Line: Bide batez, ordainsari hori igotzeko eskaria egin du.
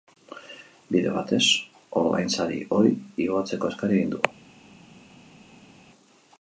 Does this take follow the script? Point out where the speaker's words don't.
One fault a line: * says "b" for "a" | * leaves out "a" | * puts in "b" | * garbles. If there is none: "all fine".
all fine